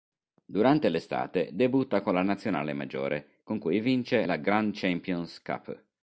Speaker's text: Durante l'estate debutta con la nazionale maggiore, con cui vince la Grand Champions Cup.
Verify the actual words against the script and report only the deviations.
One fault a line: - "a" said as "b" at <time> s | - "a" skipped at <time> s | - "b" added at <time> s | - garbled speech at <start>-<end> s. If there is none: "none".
none